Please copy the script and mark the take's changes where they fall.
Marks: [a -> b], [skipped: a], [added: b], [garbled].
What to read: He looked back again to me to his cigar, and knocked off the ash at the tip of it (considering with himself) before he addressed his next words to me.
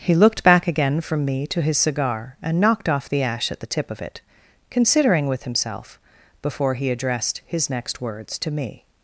He looked back again [to -> from] me to his cigar, and knocked off the ash at the tip of it (considering with himself) before he addressed his next words to me.